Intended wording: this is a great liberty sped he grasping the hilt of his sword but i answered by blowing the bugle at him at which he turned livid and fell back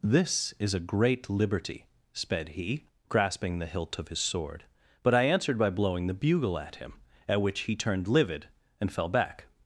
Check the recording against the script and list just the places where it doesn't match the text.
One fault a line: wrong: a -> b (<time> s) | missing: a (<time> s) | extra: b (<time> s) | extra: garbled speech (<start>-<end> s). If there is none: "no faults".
no faults